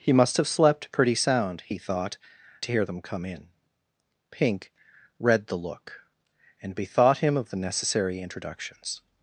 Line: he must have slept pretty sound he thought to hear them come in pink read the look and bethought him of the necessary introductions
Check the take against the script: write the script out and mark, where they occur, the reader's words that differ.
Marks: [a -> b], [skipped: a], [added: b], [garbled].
he must have slept pretty sound he thought to hear them come in pink read the look and bethought him of the necessary introductions